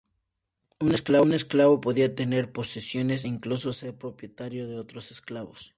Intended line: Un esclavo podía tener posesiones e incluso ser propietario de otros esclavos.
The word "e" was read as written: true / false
false